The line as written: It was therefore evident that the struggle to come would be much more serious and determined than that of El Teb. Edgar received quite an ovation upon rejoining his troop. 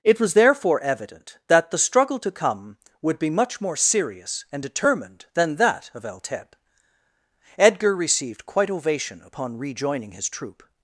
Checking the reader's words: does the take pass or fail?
fail